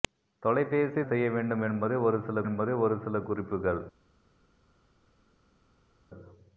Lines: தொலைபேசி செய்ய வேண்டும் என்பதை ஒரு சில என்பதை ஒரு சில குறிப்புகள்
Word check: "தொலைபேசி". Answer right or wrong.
right